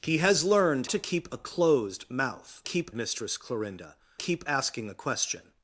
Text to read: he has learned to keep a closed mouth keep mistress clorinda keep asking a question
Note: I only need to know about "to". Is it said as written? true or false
true